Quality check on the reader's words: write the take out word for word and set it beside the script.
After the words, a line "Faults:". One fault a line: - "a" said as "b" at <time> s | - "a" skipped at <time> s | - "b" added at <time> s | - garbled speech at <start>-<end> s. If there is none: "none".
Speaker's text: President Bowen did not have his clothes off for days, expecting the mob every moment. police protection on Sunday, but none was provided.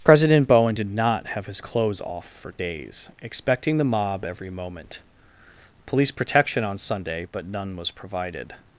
President Bowen did not have his clothes off for days, expecting the mob every moment. police protection on Sunday, but none was provided.
Faults:
none